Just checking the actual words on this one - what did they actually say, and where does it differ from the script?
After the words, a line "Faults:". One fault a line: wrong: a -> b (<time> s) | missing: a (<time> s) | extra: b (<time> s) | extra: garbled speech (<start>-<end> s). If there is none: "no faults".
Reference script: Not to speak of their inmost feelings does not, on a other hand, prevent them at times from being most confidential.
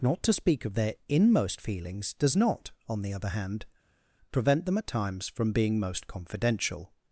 Not to speak of their inmost feelings does not, on the other hand, prevent them at times from being most confidential.
Faults:
wrong: a -> the (3.0 s)